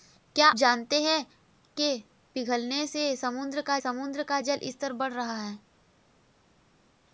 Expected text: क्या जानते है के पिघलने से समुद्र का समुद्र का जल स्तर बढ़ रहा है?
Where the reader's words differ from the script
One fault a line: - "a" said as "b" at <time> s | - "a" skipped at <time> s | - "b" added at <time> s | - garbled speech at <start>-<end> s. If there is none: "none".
none